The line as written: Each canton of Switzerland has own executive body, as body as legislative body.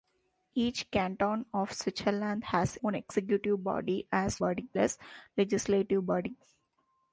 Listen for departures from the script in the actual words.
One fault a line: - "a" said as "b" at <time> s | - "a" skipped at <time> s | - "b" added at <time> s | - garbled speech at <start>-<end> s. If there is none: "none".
none